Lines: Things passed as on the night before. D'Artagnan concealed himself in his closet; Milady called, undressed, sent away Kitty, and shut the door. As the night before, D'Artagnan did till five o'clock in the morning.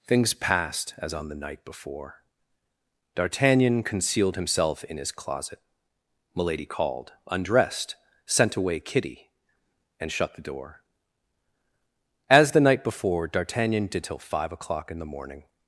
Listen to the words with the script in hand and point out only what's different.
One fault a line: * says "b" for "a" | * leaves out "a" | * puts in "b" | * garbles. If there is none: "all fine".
all fine